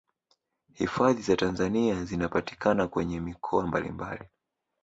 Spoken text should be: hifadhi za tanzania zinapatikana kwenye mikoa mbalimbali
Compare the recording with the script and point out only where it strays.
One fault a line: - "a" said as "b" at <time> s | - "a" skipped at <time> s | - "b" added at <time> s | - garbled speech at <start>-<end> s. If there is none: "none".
none